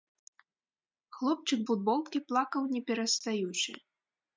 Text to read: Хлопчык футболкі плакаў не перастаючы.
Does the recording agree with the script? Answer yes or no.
yes